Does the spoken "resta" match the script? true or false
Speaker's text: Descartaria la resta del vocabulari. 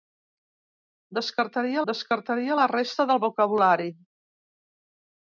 true